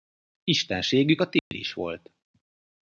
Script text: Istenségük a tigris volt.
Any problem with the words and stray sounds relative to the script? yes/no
yes